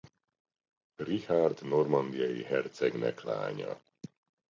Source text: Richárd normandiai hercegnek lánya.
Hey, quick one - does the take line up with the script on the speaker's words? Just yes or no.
yes